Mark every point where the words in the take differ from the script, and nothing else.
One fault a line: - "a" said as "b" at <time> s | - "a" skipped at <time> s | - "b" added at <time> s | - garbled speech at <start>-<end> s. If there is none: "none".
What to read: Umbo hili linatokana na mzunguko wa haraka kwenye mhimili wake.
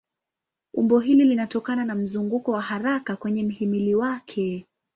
none